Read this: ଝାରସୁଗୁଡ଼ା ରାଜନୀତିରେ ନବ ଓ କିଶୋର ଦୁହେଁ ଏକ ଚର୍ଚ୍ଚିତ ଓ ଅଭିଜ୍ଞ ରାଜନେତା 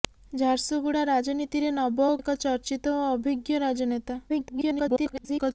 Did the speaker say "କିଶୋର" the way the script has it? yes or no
no